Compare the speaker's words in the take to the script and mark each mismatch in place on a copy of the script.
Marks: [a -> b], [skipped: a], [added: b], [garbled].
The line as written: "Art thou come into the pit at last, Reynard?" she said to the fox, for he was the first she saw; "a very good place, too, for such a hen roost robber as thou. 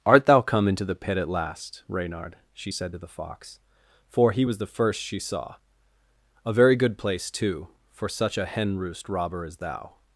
"Art thou come into the pit at last, Reynard?" she said to the fox, for he was the first she saw; "a very good place, too, for such a hen roost robber as thou.